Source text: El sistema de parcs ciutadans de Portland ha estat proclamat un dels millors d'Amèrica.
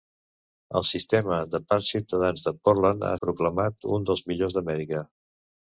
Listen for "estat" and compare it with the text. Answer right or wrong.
wrong